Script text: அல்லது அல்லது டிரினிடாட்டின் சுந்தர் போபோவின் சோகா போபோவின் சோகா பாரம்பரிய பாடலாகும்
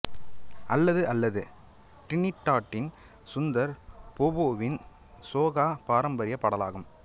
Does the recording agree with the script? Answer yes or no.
no